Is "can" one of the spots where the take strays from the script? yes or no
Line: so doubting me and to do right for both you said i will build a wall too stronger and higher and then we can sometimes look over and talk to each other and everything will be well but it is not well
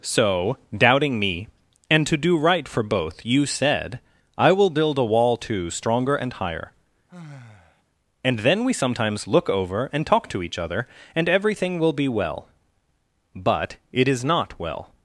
yes